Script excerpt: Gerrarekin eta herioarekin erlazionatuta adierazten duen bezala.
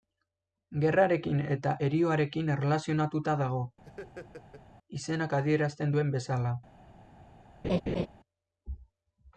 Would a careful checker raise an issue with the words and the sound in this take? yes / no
yes